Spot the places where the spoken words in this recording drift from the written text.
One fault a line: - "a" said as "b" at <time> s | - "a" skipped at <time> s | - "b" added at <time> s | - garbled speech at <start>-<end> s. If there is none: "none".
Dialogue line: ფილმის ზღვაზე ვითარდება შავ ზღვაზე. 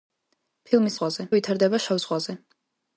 none